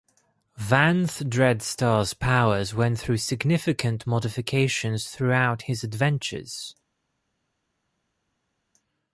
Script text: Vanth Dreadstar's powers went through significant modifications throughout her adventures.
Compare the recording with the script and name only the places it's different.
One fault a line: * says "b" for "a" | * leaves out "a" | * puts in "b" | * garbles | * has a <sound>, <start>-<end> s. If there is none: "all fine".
* says "his" for "her"